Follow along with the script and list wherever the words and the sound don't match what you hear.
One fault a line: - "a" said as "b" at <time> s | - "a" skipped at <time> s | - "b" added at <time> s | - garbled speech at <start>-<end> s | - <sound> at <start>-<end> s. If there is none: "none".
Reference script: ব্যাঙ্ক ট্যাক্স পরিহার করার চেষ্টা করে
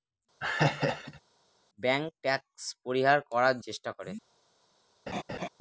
- laugh at 0.4-1.2 s
- laugh at 5.1-5.5 s